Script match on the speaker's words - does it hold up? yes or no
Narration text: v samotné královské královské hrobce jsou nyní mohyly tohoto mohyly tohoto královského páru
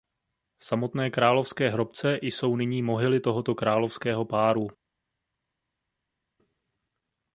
no